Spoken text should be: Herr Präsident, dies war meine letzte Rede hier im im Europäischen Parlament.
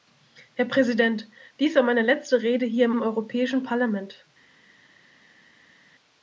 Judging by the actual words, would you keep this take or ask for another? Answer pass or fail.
pass